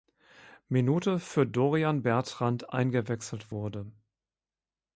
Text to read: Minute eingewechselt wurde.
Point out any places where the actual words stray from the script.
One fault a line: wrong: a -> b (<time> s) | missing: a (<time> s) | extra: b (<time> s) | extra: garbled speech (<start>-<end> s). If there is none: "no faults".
extra: für Dorian Bertrand (1.2 s)